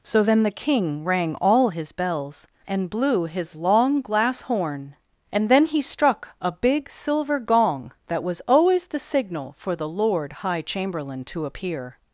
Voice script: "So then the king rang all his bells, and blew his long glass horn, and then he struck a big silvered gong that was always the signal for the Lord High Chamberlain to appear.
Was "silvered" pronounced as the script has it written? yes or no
no